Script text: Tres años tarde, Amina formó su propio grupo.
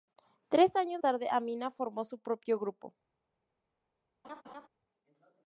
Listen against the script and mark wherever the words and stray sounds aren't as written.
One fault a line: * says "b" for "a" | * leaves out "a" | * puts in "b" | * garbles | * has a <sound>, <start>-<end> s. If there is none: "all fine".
* has a laugh, 4.2-4.7 s